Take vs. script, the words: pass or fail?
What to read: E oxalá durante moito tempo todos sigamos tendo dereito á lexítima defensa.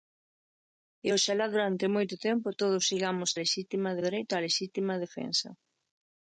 fail